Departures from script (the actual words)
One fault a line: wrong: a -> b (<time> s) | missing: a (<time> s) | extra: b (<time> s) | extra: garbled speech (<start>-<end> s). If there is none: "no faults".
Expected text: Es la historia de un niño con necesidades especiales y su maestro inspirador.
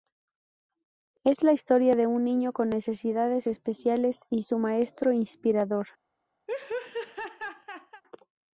no faults